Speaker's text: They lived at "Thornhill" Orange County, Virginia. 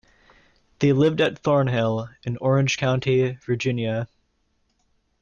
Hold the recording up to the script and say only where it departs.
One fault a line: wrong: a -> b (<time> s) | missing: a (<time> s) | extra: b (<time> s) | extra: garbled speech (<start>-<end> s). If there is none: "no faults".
extra: in (2.2 s)